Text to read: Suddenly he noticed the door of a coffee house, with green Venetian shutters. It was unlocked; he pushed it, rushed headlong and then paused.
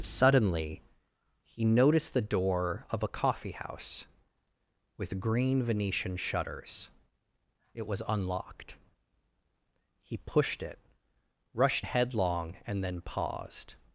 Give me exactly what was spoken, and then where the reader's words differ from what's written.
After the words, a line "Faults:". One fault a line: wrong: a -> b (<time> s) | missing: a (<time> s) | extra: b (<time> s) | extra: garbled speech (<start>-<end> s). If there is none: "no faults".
Suddenly he noticed the door of a coffee house, with green Venetian shutters. It was unlocked; he pushed it, rushed headlong and then paused.
Faults:
no faults